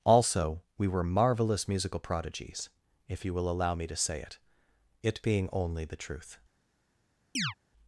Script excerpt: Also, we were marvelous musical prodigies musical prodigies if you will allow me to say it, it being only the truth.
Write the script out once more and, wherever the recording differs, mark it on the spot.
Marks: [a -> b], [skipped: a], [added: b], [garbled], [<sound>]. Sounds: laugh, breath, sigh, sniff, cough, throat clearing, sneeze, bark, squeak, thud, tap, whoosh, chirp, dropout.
Also, we were marvelous musical prodigies [skipped: musical prodigies] if you will allow me to say it, it being only the truth. [chirp]